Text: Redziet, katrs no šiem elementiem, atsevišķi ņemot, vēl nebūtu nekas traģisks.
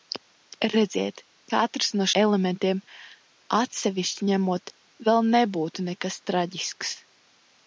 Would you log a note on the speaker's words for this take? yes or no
yes